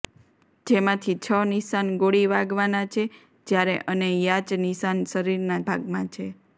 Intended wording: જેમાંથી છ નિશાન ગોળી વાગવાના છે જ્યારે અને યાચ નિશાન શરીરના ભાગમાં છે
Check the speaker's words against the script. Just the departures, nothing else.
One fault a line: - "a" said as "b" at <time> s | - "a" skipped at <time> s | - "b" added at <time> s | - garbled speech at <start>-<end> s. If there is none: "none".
none